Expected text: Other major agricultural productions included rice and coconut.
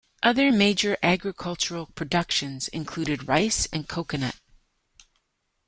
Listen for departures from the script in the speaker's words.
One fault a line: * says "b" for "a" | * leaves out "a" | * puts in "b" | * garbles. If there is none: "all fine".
all fine